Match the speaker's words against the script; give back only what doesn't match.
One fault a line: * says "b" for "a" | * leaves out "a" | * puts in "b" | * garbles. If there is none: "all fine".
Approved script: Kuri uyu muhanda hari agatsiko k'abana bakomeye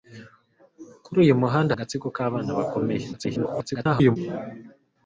* leaves out "hari"
* garbles